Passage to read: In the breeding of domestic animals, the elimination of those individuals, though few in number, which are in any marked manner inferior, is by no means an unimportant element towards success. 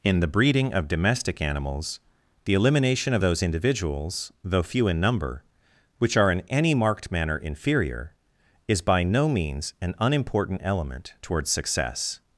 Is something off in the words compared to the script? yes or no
no